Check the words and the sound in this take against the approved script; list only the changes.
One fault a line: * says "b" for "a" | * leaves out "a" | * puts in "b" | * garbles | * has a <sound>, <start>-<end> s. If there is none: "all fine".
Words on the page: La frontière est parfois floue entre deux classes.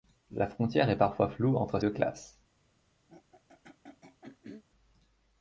* has a throat clearing, 3.1-4.6 s